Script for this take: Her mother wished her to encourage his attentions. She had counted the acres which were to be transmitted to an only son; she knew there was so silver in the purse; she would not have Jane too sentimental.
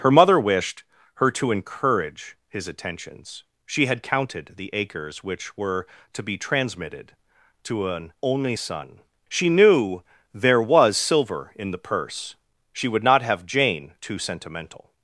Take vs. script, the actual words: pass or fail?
fail